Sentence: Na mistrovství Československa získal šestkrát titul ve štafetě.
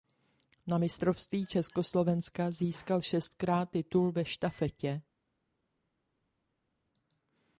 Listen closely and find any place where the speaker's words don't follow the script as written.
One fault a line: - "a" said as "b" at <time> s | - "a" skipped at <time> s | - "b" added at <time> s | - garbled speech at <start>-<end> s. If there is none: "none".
none